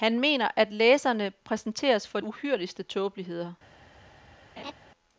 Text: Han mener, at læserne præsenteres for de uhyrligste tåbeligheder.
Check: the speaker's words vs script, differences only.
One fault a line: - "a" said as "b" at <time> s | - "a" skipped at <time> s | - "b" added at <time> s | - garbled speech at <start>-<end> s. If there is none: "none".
- "de" skipped at 2.2 s